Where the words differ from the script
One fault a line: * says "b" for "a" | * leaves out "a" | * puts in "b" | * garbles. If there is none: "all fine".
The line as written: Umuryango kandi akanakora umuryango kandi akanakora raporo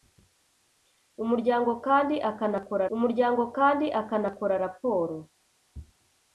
all fine